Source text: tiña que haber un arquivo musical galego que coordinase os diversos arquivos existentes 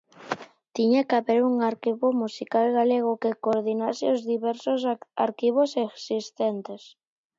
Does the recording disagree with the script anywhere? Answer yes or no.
no